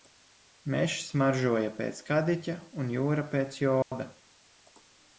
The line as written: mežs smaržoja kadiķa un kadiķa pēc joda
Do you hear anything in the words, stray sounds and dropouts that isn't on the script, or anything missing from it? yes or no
yes